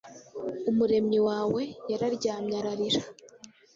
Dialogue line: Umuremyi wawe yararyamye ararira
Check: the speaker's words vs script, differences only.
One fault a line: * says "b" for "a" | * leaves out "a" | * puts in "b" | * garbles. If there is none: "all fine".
all fine